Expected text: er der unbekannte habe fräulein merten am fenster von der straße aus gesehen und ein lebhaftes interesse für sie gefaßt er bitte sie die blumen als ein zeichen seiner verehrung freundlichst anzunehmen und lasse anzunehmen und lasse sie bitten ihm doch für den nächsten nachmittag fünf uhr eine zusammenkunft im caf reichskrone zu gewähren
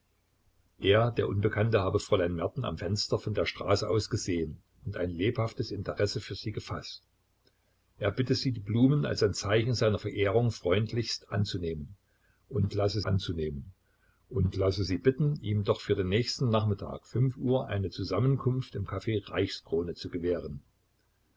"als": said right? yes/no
yes